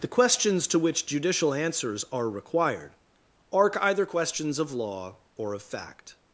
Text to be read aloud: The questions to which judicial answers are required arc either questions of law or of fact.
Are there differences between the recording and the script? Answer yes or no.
no